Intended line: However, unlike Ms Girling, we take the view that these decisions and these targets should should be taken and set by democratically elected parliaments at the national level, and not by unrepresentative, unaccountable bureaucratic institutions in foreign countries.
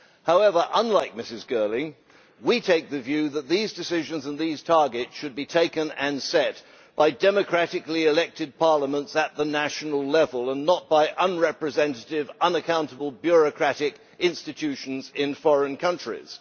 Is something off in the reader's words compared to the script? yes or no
yes